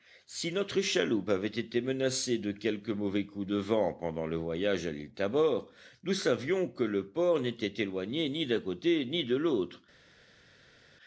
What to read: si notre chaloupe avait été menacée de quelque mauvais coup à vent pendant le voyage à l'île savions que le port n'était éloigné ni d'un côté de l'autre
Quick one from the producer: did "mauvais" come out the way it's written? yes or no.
yes